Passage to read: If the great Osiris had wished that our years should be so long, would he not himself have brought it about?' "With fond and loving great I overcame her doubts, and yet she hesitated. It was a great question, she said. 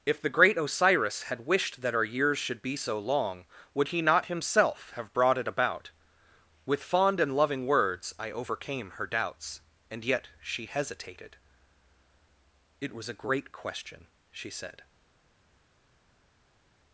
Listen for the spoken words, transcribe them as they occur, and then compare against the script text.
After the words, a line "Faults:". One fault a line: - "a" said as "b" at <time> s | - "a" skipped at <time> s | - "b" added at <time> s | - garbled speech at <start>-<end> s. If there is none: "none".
If the great Osiris had wished that our years should be so long, would he not himself have brought it about?' "With fond and loving words I overcame her doubts, and yet she hesitated. It was a great question, she said.
Faults:
- "great" said as "words" at 7.6 s